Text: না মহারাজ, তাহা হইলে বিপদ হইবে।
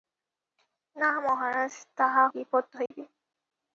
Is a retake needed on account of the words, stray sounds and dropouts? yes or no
yes